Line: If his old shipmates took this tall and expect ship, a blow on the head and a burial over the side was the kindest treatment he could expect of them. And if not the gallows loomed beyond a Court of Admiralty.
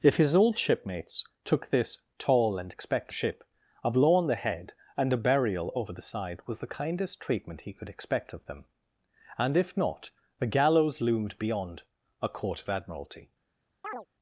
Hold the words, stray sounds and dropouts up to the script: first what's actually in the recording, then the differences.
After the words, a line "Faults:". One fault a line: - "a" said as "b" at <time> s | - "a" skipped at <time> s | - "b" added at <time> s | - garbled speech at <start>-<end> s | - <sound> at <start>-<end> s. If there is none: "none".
If his old shipmates took this tall and expect ship, a blow on the head and a burial over the side was the kindest treatment he could expect of them. And if not the gallows loomed beyond a Court of Admiralty.
Faults:
- chirp at 13.8-14.1 s